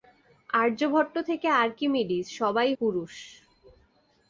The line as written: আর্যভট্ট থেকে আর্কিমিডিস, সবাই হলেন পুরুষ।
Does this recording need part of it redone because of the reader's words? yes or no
yes